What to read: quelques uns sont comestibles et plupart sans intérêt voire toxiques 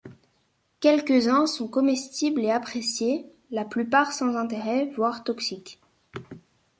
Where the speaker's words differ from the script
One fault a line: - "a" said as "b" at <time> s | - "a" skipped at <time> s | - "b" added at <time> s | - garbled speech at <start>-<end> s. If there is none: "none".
- "appréciés la" added at 2.5 s